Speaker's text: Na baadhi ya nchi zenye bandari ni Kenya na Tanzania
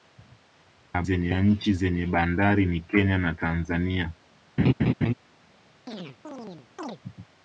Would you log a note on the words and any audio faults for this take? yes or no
yes